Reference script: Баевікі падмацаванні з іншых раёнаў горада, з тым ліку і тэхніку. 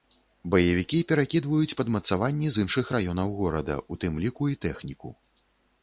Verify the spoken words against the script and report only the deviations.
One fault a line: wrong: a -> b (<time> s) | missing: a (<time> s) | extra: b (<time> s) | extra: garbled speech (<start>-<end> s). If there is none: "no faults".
extra: перакідваюць (1.1 s)
wrong: з -> у (3.9 s)